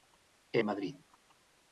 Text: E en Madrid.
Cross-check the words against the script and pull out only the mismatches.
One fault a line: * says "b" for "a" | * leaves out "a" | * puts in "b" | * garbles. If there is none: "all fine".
all fine